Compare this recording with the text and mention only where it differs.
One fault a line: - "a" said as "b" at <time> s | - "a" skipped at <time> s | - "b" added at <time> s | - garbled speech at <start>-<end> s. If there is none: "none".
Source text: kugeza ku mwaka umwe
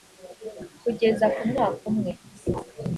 none